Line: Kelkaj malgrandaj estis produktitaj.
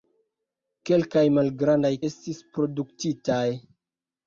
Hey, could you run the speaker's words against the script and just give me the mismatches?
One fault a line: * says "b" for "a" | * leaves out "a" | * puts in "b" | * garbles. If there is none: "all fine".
all fine